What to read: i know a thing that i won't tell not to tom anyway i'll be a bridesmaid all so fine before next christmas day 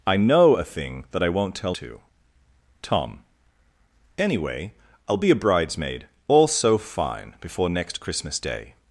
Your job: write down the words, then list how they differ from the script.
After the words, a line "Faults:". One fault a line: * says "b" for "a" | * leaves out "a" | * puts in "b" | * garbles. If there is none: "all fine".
i know a thing that i won't tell to tom anyway i'll be a bridesmaid all so fine before next christmas day
Faults:
* leaves out "not"